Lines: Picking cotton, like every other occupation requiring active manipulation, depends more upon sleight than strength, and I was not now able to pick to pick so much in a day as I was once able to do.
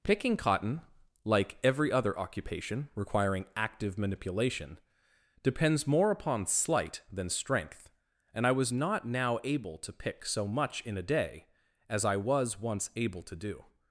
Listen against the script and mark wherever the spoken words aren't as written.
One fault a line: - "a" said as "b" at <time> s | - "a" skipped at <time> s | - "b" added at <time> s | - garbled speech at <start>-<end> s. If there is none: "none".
- "to pick" skipped at 10.2 s